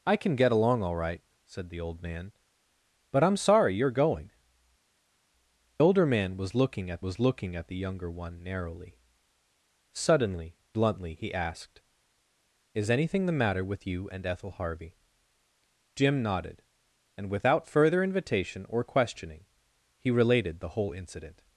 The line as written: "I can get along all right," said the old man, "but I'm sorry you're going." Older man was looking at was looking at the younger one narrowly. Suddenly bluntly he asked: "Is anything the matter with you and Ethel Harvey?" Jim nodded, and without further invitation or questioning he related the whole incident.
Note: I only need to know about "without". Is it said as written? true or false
true